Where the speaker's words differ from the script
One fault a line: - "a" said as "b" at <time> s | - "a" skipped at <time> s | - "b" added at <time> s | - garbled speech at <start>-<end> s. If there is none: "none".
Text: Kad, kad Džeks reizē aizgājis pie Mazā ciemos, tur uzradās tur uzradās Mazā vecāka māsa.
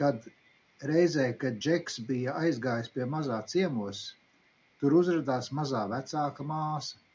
- "reizē" added at 0.9 s
- "reizē" said as "bija" at 2.1 s
- "tur uzradās" skipped at 5.5 s